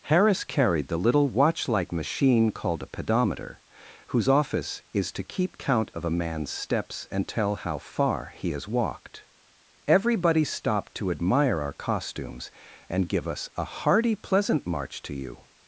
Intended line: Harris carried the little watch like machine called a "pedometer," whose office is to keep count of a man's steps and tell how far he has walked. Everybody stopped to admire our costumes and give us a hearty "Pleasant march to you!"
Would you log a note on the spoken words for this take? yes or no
no